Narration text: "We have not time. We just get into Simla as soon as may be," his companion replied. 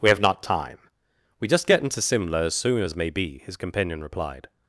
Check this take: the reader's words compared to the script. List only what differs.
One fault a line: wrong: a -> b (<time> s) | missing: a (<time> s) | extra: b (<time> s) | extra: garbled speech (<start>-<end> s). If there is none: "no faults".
no faults